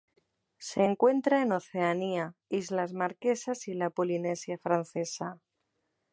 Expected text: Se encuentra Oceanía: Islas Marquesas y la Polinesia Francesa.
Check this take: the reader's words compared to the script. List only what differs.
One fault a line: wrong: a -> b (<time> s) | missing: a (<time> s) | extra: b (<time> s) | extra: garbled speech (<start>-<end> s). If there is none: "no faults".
extra: en (1.4 s)